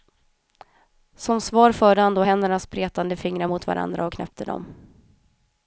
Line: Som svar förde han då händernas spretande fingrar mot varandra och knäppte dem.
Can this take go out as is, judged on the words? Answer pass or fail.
pass